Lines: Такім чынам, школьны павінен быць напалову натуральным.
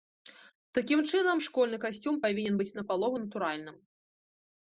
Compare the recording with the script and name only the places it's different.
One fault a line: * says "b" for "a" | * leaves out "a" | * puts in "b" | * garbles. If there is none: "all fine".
* puts in "касцюм"